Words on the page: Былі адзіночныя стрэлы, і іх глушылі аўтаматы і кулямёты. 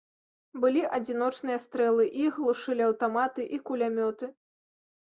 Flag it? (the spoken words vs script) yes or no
no